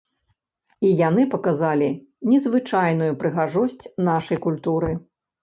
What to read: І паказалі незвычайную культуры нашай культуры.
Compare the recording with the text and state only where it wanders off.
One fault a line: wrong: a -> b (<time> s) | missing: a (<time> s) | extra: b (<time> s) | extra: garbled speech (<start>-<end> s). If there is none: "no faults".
extra: яны (1.1 s)
wrong: культуры -> прыгажосць (3.2 s)